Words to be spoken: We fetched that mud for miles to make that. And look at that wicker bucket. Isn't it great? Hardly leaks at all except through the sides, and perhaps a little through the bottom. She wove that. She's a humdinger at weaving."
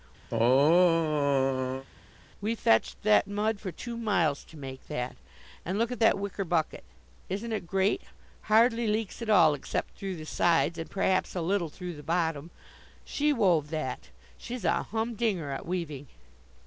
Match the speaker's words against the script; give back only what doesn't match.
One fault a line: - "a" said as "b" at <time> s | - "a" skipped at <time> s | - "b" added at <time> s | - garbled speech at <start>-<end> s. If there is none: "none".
- "two" added at 3.7 s